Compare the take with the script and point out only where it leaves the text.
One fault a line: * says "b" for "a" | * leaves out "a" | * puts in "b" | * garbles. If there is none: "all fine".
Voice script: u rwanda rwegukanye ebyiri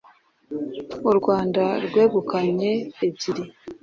all fine